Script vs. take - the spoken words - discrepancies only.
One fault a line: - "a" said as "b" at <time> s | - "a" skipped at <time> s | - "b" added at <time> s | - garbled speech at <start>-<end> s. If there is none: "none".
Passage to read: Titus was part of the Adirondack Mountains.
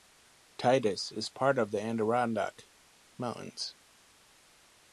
- "was" said as "is" at 1.1 s